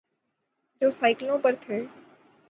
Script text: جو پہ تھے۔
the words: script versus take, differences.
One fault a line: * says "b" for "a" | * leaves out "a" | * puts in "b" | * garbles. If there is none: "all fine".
* puts in "سائیکلوں"